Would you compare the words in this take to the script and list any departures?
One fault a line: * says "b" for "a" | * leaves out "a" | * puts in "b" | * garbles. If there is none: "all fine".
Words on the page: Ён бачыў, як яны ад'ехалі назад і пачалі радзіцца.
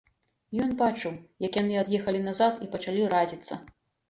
all fine